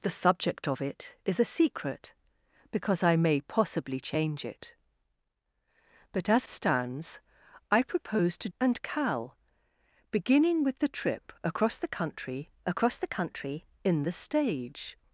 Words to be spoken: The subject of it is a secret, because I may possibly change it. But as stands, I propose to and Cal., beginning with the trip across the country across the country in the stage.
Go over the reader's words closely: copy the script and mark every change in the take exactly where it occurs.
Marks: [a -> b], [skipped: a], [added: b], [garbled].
The subject of it is a secret, because I may possibly change it. But as stands, I propose to and Cal., beginning with the trip across the country across the country in the stage.